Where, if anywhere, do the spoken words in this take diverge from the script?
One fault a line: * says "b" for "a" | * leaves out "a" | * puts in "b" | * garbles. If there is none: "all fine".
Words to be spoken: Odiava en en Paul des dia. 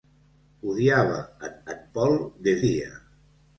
all fine